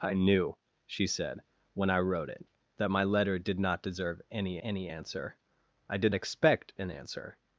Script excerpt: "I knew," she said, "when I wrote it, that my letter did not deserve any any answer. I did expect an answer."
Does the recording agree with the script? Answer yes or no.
yes